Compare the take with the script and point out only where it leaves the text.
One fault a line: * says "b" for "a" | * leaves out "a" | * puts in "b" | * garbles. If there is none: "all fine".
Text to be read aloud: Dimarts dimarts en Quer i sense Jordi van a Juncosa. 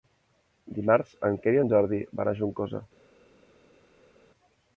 * leaves out "dimarts"
* says "en" for "sense"